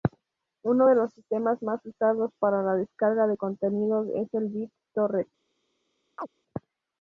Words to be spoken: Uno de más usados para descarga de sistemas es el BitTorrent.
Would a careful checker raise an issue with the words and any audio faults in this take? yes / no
yes